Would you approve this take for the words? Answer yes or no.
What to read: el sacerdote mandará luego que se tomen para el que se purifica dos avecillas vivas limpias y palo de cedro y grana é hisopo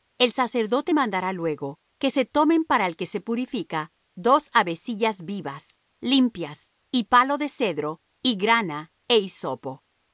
yes